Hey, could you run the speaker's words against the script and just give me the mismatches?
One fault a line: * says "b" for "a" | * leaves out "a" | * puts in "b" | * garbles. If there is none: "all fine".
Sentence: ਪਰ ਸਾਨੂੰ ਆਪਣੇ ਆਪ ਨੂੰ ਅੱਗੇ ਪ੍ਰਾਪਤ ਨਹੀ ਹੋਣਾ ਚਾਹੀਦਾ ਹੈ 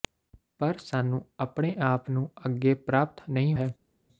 * leaves out "ਹੋਣਾ ਚਾਹੀਦਾ"